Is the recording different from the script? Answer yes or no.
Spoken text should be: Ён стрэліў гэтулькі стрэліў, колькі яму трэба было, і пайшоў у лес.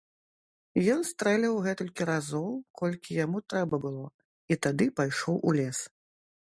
yes